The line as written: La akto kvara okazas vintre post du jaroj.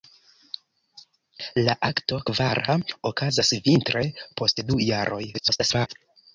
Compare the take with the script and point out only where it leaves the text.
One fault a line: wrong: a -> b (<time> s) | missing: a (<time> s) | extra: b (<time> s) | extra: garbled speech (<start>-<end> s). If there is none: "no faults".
extra: garbled speech (5.3-5.9 s)